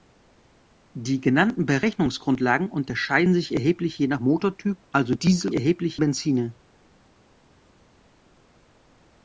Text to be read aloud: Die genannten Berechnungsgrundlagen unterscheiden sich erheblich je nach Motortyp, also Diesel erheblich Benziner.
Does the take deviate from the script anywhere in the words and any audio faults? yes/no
no